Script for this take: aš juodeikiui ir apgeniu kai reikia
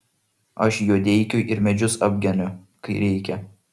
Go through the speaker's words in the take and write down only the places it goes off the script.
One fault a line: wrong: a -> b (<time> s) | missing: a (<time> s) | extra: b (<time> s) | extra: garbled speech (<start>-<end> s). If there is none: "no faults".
extra: medžius (1.6 s)